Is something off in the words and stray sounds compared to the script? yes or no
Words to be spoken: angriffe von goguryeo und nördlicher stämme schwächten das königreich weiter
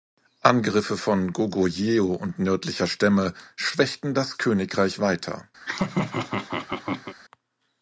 yes